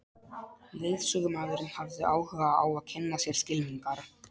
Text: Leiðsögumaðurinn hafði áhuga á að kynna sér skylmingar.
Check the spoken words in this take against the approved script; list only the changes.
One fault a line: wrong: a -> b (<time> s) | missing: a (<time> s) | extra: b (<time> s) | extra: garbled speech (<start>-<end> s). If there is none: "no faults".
no faults